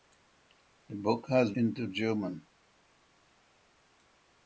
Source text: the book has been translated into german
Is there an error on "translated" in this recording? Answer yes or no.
yes